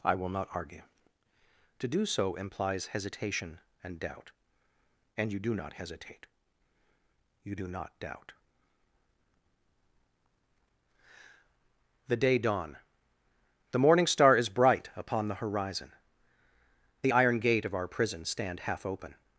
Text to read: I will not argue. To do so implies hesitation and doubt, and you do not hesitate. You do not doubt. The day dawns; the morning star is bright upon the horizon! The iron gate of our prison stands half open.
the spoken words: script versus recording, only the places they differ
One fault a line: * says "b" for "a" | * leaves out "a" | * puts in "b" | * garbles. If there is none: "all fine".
* says "dawn" for "dawns"
* says "stand" for "stands"